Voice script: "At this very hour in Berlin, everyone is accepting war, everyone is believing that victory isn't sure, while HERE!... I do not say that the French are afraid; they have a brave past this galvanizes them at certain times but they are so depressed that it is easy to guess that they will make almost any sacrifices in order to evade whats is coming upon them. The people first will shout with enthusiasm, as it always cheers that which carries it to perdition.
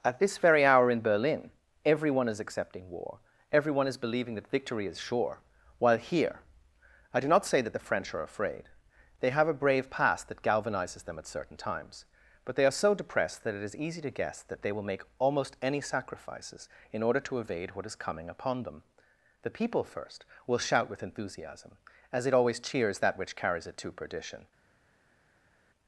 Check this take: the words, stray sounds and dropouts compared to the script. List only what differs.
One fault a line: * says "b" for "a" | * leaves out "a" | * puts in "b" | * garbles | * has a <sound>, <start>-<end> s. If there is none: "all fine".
* says "is" for "isn't"
* says "that" for "this"
* says "what" for "whats"